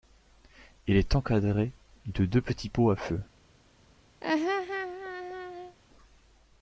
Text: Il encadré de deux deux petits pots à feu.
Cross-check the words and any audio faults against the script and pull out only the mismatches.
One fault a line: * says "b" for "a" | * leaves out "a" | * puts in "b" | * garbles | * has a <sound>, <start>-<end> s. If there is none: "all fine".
* puts in "est"
* leaves out "deux"
* has a laugh, 4.2-5.8 s